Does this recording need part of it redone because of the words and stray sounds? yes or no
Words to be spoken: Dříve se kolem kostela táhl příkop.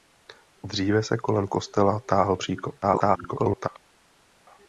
yes